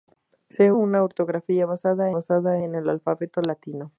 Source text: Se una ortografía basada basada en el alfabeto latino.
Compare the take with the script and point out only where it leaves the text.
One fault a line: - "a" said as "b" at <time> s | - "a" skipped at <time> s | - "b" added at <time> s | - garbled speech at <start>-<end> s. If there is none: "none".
none